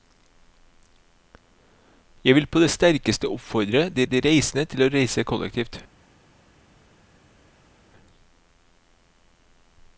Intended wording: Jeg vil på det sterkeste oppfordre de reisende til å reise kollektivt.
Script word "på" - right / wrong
right